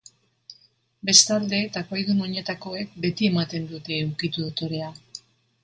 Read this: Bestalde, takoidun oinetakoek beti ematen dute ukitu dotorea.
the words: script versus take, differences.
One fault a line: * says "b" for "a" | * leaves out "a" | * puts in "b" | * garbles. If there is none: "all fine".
all fine